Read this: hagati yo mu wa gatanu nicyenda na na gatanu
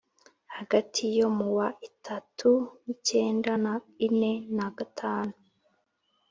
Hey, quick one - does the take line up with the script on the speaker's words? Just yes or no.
no